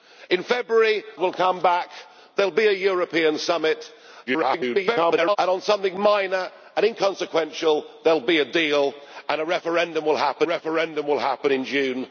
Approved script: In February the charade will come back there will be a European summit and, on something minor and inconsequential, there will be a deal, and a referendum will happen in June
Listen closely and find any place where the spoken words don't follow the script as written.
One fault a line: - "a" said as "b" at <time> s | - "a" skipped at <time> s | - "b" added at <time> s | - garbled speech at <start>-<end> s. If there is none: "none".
- "the charade" skipped at 1.0 s
- garbled speech at 4.3-5.4 s
- "referendum will happen" added at 10.4 s